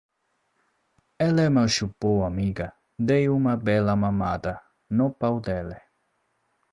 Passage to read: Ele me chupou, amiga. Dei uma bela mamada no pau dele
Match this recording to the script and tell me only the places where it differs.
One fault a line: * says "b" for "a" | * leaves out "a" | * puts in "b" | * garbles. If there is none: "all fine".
all fine